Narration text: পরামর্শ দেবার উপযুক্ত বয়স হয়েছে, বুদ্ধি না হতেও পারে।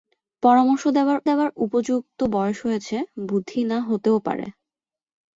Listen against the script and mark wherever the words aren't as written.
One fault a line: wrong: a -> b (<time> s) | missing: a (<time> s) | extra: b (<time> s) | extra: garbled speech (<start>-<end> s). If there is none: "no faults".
extra: দেবার (1.3 s)